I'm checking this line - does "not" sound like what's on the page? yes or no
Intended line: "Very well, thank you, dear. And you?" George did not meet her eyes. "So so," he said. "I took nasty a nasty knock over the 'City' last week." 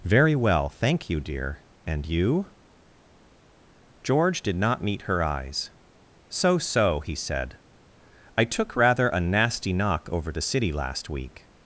yes